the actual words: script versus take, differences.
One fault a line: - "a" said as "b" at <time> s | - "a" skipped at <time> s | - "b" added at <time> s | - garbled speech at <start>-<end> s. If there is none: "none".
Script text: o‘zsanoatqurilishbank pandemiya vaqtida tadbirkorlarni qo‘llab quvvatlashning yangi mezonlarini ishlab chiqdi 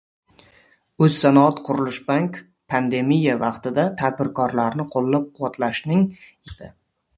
- "yangi mezonlarini ishlab" skipped at 6.1 s